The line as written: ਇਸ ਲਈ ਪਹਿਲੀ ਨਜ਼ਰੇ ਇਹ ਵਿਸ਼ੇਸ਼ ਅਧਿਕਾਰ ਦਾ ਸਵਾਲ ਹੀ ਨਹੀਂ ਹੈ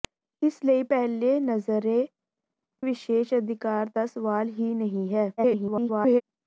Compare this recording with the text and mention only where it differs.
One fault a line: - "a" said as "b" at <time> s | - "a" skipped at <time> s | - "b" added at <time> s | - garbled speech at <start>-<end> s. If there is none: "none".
- "ਇਹ" skipped at 2.1 s
- garbled speech at 5.4-6.2 s